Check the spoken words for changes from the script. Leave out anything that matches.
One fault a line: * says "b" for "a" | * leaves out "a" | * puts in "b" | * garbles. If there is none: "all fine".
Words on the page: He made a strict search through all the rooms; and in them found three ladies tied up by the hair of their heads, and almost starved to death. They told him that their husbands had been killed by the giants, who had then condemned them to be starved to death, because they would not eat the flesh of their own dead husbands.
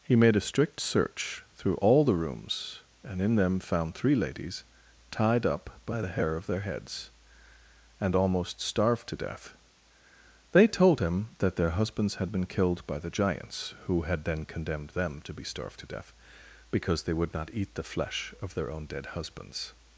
all fine